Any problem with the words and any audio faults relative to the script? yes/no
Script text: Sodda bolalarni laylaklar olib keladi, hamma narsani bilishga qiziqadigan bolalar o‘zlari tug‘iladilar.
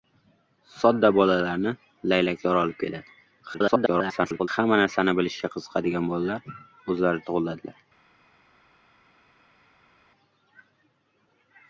yes